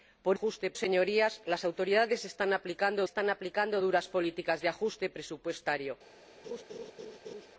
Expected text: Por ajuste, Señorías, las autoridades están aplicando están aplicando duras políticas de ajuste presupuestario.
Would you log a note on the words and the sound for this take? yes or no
yes